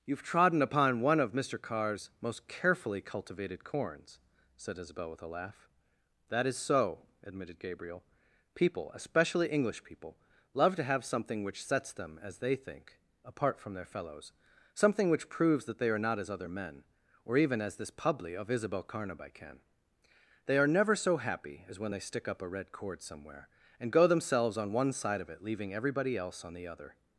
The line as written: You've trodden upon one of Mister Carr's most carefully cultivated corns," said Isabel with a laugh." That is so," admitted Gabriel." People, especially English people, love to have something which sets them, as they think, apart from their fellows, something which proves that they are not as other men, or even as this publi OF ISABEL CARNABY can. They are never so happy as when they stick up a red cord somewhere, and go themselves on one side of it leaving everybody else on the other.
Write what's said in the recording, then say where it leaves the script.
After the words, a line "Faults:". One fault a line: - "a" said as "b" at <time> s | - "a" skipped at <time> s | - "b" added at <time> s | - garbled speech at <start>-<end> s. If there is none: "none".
You've trodden upon one of Mister Carr's most carefully cultivated corns," said Isabel with a laugh." That is so," admitted Gabriel." People, especially English people, love to have something which sets them, as they think, apart from their fellows, something which proves that they are not as other men, or even as this publi OF ISABEL CARNABY can. They are never so happy as when they stick up a red cord somewhere, and go themselves on one side of it leaving everybody else on the other.
Faults:
none